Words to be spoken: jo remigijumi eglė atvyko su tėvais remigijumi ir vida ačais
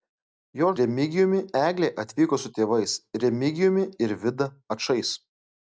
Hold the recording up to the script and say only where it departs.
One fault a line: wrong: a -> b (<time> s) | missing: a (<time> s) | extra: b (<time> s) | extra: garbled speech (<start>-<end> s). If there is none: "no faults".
no faults